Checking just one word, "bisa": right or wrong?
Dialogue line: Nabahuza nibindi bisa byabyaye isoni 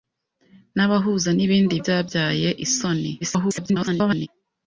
wrong